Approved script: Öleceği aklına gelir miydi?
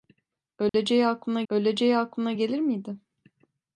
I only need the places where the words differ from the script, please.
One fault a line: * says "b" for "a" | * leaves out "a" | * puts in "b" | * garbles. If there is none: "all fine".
* puts in "öleceği aklına"